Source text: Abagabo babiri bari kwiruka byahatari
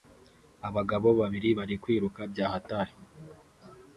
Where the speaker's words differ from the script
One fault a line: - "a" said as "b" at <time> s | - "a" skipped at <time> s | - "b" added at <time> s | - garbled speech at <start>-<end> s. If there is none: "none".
none